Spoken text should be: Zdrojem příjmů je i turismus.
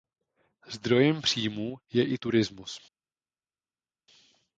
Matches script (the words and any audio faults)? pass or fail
pass